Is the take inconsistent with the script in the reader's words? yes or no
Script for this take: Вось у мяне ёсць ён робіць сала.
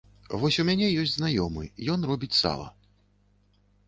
yes